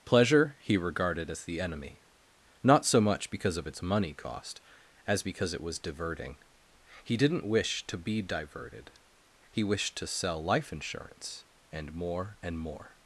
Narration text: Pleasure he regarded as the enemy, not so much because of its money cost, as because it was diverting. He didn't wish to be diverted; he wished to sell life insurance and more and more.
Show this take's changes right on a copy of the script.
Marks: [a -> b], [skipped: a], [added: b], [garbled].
Pleasure he regarded as the enemy, not so much because of its money cost, as because it was diverting. He didn't wish to be diverted; he wished to sell life insurance and more and more.